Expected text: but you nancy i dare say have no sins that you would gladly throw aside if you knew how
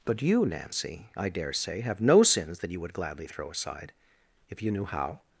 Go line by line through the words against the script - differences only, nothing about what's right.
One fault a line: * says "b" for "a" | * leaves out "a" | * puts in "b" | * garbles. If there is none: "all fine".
all fine